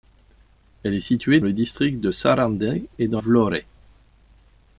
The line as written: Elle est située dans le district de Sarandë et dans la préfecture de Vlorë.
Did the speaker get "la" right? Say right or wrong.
wrong